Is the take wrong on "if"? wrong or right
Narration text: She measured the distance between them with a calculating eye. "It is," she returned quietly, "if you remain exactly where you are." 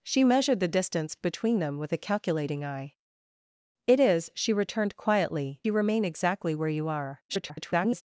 wrong